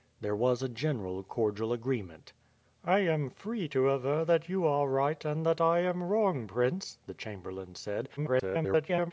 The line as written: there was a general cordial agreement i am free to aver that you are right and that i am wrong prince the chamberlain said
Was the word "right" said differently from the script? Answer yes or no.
no